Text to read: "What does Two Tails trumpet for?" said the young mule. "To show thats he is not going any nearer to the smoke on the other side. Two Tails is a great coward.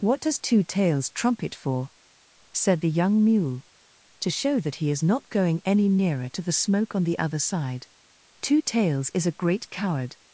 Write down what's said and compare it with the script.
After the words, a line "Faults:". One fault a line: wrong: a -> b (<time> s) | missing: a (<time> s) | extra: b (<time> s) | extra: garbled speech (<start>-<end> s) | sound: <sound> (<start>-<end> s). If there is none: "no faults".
"What does Two Tails trumpet for?" said the young mule. "To show that he is not going any nearer to the smoke on the other side. Two Tails is a great coward.
Faults:
wrong: thats -> that (4.6 s)